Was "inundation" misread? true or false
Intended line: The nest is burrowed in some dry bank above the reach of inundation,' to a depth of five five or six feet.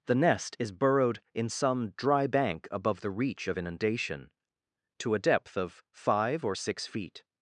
false